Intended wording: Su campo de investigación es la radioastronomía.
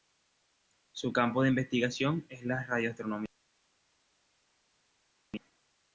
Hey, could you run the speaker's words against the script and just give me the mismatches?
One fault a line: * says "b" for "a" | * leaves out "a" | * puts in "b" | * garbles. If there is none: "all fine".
all fine